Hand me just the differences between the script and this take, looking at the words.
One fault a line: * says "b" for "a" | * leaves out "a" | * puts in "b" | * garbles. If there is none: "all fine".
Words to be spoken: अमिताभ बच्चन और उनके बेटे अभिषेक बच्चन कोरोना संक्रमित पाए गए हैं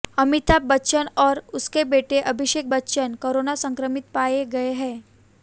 all fine